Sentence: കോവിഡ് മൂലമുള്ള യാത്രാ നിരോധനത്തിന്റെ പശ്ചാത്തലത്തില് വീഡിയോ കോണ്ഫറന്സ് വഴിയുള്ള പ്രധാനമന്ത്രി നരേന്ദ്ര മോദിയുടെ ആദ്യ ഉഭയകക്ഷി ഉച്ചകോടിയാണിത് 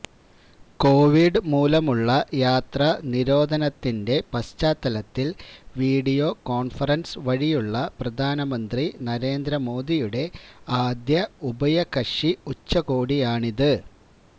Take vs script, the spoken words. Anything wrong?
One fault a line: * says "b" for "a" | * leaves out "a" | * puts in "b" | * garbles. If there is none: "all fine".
all fine